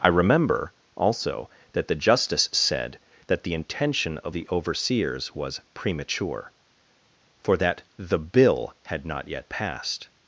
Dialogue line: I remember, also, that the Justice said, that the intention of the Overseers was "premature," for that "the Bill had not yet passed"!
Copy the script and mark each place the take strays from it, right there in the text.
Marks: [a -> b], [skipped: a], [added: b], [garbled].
I remember, also, that the Justice said, that the intention of the Overseers was "premature," for that "the Bill had not yet passed"!